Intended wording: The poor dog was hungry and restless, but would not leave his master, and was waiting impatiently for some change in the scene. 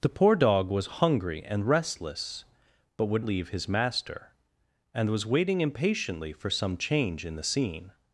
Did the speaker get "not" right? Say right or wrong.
wrong